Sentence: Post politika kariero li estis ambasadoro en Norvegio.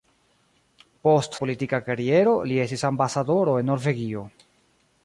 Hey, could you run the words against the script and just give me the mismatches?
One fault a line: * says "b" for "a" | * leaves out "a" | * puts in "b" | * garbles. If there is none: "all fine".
all fine